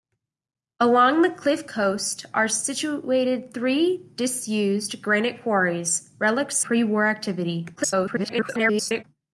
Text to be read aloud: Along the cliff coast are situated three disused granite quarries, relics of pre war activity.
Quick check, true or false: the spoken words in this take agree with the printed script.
false